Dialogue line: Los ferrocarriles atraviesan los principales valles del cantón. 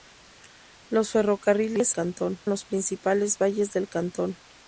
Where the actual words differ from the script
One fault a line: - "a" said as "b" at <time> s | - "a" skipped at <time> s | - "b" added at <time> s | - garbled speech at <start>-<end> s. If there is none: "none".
- "atraviesan" said as "cantón" at 1.9 s